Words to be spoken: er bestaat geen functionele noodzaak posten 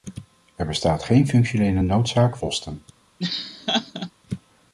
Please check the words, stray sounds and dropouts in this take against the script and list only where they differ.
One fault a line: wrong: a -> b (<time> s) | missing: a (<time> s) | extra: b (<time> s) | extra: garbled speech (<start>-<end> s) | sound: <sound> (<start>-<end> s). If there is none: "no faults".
sound: laugh (3.2-4.1 s)